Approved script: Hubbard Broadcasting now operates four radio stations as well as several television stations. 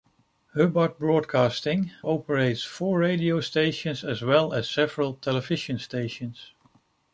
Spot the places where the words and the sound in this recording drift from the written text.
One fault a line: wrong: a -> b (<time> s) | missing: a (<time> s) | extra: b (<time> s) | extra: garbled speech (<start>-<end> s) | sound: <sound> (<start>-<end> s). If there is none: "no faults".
missing: now (1.9 s)